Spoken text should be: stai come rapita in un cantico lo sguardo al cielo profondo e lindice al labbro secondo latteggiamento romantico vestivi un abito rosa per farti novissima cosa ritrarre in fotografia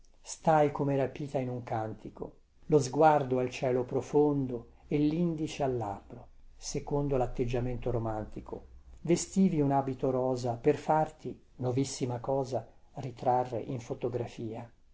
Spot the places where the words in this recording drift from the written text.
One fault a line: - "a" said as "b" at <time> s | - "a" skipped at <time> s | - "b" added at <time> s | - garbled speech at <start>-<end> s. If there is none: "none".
none